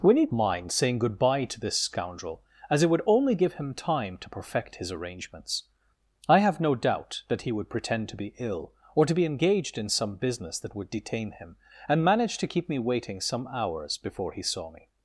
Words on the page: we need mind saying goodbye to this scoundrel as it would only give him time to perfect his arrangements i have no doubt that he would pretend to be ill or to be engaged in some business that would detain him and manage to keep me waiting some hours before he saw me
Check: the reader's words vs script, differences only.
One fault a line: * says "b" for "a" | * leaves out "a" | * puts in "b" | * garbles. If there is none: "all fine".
all fine